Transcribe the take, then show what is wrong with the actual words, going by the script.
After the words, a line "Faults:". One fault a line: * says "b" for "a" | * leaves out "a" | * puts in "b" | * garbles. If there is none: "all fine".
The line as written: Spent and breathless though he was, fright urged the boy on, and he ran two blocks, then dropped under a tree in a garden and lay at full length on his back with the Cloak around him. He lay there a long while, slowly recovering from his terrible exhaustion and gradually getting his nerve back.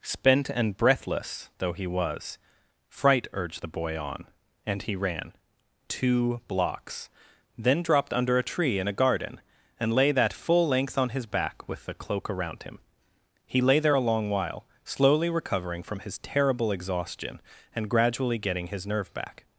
Spent and breathless though he was, fright urged the boy on, and he ran two blocks, then dropped under a tree in a garden and lay that full length on his back with the Cloak around him. He lay there a long while, slowly recovering from his terrible exhaustion and gradually getting his nerve back.
Faults:
* says "that" for "at"